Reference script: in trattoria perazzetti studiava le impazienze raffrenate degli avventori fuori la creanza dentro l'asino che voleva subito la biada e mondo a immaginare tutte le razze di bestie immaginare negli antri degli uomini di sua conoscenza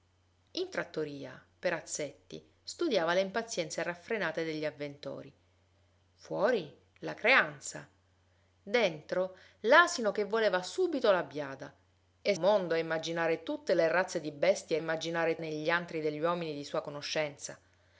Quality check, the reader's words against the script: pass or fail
pass